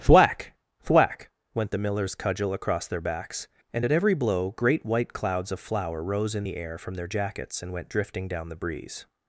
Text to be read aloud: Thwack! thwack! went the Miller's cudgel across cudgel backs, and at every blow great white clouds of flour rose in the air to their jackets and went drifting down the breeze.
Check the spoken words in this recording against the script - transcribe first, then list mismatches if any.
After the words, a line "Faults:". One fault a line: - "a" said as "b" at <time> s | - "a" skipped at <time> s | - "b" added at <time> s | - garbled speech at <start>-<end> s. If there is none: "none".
Thwack! thwack! went the Miller's cudgel across their backs, and at every blow great white clouds of flour rose in the air from their jackets and went drifting down the breeze.
Faults:
- "cudgel" said as "their" at 2.9 s
- "to" said as "from" at 6.8 s